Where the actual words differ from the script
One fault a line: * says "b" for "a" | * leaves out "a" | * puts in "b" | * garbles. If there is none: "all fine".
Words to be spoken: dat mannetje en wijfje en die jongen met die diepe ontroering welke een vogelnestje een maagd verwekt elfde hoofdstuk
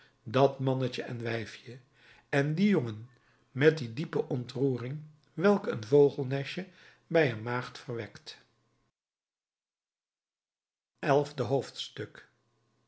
* puts in "bij"